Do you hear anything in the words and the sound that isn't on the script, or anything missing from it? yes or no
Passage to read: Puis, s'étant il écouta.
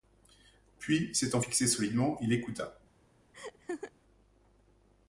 yes